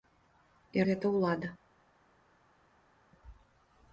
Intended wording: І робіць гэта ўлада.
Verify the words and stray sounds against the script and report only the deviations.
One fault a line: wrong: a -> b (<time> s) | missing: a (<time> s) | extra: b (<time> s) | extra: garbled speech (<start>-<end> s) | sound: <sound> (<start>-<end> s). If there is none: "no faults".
missing: робіць (0.9 s)